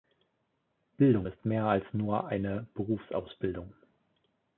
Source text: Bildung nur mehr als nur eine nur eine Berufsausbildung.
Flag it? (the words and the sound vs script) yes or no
yes